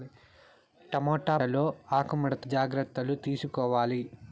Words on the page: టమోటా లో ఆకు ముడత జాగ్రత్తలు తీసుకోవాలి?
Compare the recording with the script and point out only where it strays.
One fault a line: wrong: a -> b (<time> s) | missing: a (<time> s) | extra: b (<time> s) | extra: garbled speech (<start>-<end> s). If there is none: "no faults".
no faults